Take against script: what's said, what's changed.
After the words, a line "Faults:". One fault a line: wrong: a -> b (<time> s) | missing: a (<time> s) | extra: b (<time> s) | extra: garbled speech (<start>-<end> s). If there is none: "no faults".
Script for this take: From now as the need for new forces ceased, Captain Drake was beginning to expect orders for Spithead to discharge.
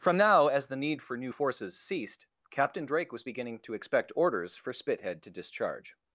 From now as the need for new forces ceased, Captain Drake was beginning to expect orders for Spithead to discharge.
Faults:
no faults